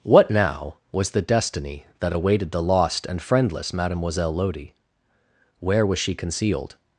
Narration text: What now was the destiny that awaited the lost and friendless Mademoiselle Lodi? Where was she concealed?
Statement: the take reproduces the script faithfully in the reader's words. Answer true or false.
true